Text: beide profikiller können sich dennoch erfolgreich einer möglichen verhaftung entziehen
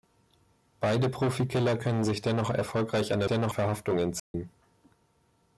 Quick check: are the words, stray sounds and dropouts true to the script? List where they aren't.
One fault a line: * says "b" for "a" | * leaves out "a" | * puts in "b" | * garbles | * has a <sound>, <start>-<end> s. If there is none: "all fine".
* says "dennoch" for "möglichen"
* has a dropout, 4.2-4.3 s